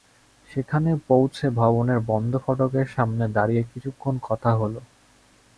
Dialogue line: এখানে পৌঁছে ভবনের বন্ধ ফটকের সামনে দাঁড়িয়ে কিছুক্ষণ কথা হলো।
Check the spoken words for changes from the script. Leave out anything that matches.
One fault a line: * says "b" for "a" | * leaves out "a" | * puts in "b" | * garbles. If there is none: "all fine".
* says "সেখানে" for "এখানে"